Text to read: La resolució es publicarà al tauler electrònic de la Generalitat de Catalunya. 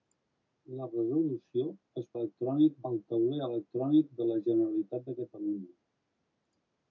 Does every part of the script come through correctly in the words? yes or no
no